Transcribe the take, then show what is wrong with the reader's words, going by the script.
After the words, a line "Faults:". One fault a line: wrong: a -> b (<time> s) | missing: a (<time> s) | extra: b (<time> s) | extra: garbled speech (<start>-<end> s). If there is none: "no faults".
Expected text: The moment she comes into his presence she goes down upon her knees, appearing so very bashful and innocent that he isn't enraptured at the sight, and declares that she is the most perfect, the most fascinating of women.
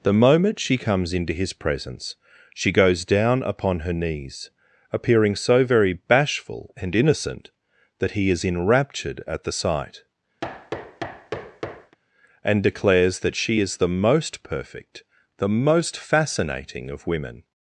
The moment she comes into his presence she goes down upon her knees, appearing so very bashful and innocent that he is enraptured at the sight, and declares that she is the most perfect, the most fascinating of women.
Faults:
wrong: isn't -> is (8.3 s)